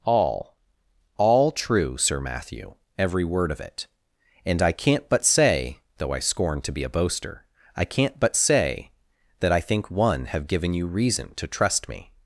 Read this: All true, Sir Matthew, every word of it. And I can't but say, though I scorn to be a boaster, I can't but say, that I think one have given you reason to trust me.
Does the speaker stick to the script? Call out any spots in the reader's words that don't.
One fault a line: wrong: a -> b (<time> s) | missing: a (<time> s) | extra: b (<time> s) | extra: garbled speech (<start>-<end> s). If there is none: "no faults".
extra: All (1.2 s)